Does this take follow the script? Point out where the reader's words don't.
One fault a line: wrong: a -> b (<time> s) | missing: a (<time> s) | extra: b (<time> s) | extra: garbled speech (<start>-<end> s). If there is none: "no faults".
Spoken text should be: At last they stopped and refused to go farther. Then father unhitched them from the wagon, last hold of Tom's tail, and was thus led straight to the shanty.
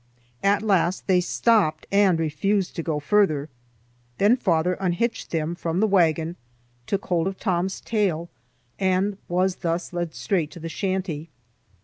wrong: last -> took (6.9 s)